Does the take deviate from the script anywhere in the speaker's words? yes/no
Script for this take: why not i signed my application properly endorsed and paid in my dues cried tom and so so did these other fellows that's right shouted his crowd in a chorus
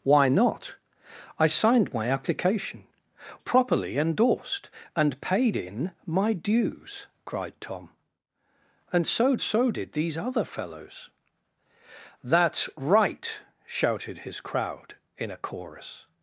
no